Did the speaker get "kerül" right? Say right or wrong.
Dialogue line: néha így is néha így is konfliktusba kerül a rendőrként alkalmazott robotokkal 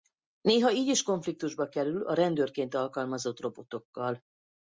right